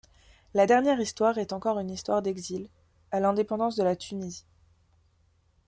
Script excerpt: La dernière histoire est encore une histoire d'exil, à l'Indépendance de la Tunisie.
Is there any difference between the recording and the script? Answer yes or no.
no